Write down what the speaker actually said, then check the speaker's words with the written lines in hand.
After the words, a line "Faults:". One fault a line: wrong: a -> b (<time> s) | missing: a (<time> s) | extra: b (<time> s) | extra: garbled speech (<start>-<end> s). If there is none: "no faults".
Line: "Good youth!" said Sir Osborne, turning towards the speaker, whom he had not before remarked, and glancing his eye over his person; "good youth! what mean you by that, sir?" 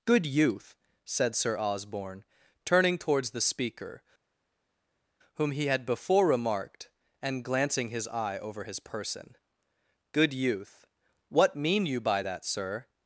"Good youth!" said Sir Osborne, turning towards the speaker, whom he had before remarked, and glancing his eye over his person; "good youth! what mean you by that, sir?"
Faults:
missing: not (5.9 s)